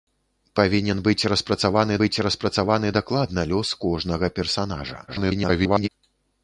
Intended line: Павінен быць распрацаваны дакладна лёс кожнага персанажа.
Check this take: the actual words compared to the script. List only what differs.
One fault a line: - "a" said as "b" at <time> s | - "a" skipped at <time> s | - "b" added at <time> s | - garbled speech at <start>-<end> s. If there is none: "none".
- "быць распрацаваны" added at 2.0 s
- garbled speech at 5.1-5.9 s